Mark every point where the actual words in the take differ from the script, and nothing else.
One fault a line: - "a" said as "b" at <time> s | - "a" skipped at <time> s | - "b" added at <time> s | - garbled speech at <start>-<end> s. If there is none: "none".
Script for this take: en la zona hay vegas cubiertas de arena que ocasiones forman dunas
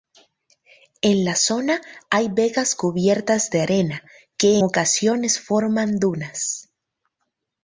none